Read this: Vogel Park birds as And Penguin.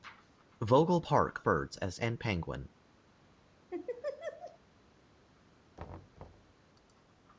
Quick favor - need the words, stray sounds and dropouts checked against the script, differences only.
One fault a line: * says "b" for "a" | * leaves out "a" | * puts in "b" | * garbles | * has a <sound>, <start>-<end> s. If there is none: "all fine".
* has a laugh, 3.7-4.6 s
* has a thud, 5.8-6.6 s